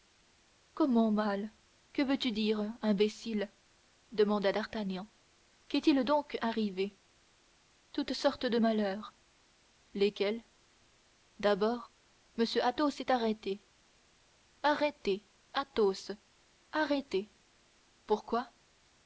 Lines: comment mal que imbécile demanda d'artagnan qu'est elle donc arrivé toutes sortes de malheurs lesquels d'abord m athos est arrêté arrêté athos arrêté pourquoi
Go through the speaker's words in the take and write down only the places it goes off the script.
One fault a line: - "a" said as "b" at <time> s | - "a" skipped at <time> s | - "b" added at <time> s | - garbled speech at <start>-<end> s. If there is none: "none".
- "veux tu dire" added at 2.0 s
- "elle" said as "il" at 5.9 s